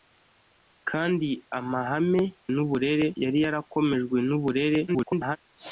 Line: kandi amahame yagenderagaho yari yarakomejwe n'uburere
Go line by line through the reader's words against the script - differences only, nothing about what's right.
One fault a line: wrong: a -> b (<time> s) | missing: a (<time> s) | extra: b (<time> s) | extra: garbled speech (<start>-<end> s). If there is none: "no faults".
wrong: yagenderagaho -> n'uburere (2.5 s)
extra: garbled speech (4.9-5.4 s)